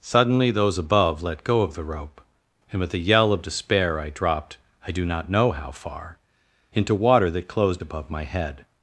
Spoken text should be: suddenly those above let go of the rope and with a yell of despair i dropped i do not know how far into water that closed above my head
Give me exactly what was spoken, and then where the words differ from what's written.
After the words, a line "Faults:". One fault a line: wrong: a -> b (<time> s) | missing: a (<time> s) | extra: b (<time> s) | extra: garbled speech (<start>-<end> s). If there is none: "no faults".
suddenly those above let go of the rope and with a yell of despair i dropped i do not know how far into water that closed above my head
Faults:
no faults